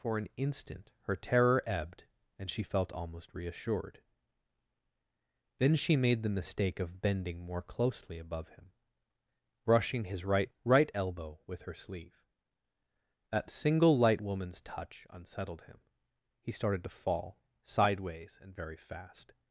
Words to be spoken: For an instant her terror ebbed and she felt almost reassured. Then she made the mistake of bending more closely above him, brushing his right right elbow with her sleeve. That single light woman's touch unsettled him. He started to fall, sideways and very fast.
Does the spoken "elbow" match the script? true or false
true